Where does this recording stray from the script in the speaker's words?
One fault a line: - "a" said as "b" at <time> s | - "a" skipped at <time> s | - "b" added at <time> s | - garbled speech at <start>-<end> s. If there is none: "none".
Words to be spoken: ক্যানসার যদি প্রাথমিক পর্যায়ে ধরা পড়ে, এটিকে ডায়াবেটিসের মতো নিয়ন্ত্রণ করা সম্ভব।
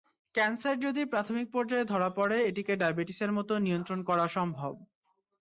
none